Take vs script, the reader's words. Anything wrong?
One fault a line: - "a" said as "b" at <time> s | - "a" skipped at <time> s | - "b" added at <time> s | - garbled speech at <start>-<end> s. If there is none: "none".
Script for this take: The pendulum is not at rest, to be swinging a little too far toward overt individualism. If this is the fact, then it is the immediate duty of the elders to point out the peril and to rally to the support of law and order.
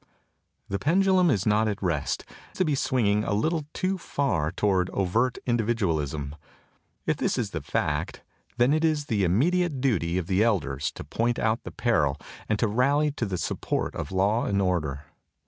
none